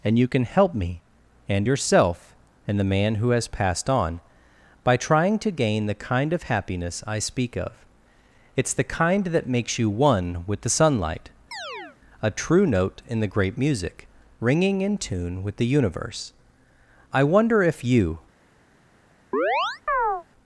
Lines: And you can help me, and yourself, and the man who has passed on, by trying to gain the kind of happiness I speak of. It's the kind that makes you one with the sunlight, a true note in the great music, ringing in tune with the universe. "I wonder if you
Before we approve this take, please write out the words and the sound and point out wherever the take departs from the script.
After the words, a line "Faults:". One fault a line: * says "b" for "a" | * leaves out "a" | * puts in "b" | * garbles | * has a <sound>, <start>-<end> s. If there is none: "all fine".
And you can help me, and yourself, and the man who has passed on, by trying to gain the kind of happiness I speak of. It's the kind that makes you one with the sunlight, a true note in the great music, ringing in tune with the universe. "I wonder if you
Faults:
* has a chirp, 11.5-12.0 s
* has a chirp, 19.3-20.2 s